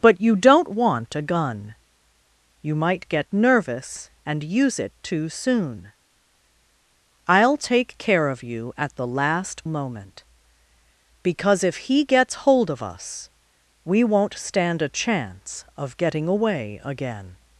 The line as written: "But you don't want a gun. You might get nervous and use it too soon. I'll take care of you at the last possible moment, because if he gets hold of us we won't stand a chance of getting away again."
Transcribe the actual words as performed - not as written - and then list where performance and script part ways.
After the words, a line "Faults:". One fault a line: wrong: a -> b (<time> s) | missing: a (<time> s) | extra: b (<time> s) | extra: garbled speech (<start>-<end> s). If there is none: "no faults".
"But you don't want a gun. You might get nervous and use it too soon. I'll take care of you at the last moment, because if he gets hold of us we won't stand a chance of getting away again."
Faults:
missing: possible (9.7 s)